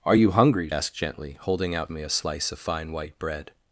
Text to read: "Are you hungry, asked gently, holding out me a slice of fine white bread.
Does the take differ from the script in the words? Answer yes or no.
no